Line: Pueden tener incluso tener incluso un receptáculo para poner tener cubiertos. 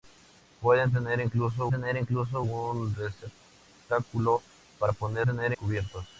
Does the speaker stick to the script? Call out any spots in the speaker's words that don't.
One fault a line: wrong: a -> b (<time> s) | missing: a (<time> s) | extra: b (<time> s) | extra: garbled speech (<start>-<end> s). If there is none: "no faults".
no faults